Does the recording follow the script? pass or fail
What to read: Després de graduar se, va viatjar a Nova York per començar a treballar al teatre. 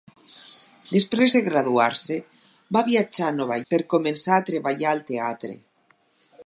fail